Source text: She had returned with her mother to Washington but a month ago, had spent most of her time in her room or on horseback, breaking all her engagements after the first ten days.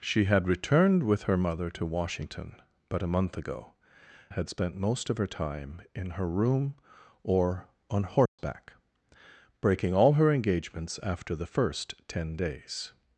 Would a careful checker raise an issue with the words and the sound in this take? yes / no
yes